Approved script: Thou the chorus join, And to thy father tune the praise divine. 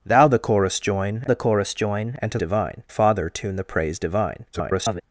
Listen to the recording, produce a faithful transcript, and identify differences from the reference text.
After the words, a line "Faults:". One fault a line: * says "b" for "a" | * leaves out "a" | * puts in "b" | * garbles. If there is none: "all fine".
Thou the chorus join the chorus join, And to divine father tune the praise divine. [garbled]
Faults:
* puts in "the chorus join"
* says "divine" for "thy"
* garbles